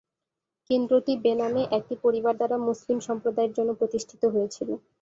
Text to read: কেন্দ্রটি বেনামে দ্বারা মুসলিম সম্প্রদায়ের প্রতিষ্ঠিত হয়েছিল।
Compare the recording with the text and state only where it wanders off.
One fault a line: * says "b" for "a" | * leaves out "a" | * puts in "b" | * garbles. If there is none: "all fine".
* puts in "একটি পরিবার"
* puts in "জন্য"